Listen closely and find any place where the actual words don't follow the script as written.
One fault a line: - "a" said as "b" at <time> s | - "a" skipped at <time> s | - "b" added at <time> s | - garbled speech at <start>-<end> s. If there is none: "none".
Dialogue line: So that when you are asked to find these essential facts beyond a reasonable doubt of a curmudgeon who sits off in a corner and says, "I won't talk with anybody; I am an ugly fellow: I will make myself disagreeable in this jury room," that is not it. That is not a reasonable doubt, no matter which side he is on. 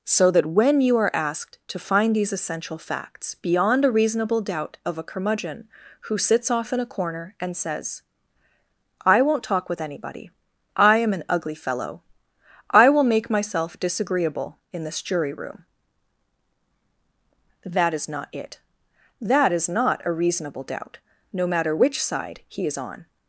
none